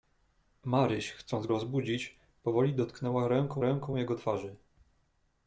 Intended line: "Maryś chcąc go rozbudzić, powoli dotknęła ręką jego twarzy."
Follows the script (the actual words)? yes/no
no